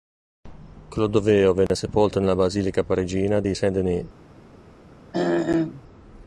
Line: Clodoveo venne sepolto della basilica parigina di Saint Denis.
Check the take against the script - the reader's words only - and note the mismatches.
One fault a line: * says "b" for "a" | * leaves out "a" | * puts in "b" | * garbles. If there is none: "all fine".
* says "nella" for "della"